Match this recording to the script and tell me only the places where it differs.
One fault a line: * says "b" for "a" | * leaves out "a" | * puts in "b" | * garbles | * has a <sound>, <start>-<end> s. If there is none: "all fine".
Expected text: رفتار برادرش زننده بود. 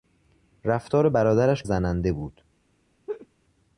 * has a laugh, 3.1-3.3 s